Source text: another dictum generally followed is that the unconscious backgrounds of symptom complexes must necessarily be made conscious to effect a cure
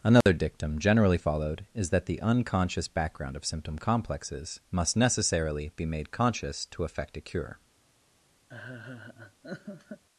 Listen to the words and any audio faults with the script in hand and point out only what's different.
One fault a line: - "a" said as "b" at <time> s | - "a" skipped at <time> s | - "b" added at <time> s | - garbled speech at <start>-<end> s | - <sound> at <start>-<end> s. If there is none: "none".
- dropout at 0.2-0.3 s
- "backgrounds" said as "background" at 2.9 s
- laugh at 8.5-10.0 s